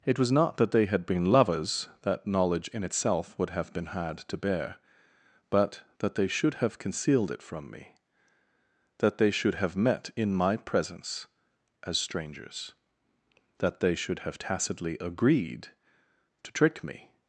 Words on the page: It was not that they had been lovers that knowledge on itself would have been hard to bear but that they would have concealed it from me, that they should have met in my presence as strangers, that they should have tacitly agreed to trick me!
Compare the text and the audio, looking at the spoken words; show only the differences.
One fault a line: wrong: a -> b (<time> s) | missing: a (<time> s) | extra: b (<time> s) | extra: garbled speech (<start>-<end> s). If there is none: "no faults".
wrong: on -> in (2.7 s)
wrong: would -> should (6.3 s)